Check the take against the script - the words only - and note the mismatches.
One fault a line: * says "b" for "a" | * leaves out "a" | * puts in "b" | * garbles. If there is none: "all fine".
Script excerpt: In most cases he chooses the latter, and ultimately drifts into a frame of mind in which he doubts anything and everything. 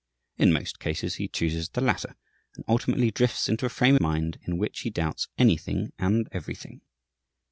* leaves out "of"